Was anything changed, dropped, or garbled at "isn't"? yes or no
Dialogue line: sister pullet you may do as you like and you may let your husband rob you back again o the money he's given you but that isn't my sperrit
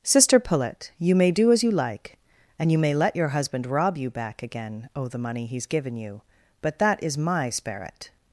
yes